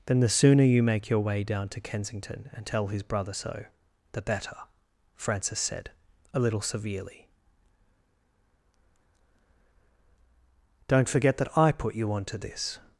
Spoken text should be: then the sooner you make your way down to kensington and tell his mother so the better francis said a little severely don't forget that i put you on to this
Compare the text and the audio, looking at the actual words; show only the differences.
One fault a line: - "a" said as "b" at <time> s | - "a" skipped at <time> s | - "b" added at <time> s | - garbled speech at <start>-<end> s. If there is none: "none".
- "mother" said as "brother" at 3.0 s